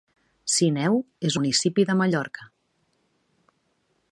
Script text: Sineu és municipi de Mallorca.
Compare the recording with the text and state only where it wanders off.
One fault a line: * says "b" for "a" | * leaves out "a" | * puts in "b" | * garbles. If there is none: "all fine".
all fine